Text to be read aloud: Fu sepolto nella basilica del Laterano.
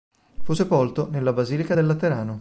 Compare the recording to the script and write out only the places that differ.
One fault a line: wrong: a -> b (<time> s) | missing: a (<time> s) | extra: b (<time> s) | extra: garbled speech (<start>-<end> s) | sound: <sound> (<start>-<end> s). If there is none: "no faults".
no faults